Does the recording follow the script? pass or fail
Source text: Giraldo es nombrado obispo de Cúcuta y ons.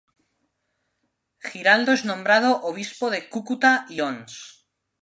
pass